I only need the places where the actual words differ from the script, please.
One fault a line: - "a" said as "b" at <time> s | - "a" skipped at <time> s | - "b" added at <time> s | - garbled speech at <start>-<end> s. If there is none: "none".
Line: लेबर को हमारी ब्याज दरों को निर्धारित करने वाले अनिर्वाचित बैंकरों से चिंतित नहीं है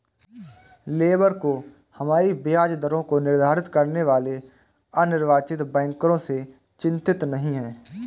none